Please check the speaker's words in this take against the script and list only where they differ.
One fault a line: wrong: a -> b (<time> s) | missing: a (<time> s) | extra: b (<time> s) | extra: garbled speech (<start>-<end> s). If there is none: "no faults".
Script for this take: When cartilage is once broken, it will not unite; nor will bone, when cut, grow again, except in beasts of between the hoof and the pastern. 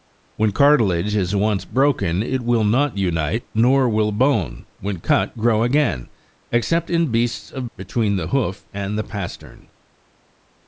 no faults